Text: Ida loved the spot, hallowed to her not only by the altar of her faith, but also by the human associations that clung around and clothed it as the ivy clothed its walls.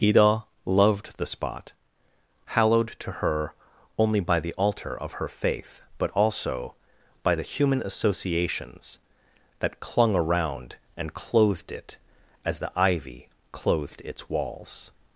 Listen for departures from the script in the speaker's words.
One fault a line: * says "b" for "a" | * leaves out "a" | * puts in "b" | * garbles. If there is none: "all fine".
* leaves out "not"